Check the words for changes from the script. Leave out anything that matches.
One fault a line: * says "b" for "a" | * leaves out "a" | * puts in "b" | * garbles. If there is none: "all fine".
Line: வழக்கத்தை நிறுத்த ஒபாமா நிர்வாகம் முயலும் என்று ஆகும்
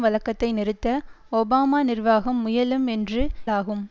all fine